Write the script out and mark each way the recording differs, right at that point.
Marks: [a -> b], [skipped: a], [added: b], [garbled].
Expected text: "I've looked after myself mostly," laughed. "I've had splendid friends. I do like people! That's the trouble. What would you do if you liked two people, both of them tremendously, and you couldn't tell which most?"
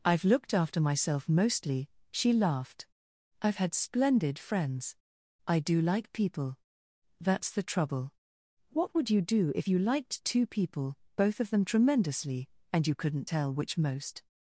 "I've looked after myself mostly," [added: she] laughed. "I've had splendid friends. I do like people! That's the trouble. What would you do if you liked two people, both of them tremendously, and you couldn't tell which most?"